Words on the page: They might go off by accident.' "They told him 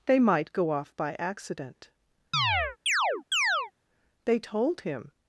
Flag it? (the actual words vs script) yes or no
no